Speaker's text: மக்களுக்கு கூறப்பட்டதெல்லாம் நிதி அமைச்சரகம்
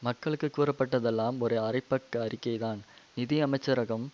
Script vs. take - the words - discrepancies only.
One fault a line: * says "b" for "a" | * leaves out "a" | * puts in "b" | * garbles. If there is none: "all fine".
* puts in "ஒரு அரைப்பக்க அறிக்கைதான்"